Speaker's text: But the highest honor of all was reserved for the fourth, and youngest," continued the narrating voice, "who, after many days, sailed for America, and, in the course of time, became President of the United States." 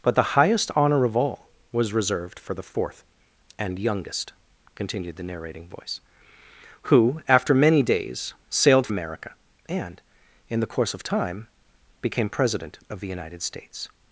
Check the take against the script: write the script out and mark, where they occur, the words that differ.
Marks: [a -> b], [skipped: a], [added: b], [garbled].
But the highest honor of all was reserved for the fourth, and youngest," continued the narrating voice, "who, after many days, sailed [skipped: for] America, and, in the course of time, became President of the United States."